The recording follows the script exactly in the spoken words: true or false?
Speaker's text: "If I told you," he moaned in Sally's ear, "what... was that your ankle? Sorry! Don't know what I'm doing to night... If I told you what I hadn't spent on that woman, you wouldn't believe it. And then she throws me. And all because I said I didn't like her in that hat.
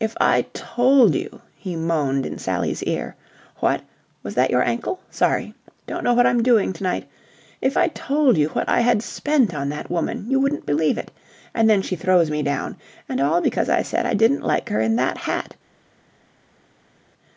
false